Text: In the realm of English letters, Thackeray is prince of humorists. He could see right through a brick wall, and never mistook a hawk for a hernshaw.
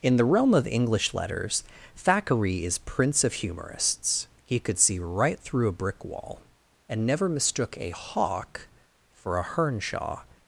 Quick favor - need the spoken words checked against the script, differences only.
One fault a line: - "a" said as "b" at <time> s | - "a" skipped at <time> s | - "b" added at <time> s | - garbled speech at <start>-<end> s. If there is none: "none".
none